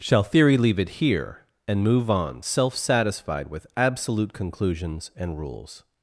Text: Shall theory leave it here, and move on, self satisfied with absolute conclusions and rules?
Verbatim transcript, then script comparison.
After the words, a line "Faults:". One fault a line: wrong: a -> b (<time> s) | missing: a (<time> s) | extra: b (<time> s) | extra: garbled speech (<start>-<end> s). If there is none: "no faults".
Shall theory leave it here, and move on, self satisfied with absolute conclusions and rules?
Faults:
no faults